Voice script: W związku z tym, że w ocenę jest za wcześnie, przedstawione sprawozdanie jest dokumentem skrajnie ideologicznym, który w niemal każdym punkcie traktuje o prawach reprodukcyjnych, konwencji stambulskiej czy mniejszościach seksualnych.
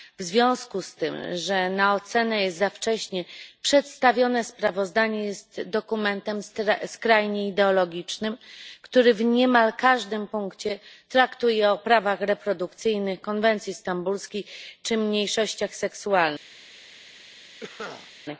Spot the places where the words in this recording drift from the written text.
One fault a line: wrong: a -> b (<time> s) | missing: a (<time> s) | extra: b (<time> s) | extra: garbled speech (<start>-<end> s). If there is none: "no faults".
wrong: w -> na (1.7 s)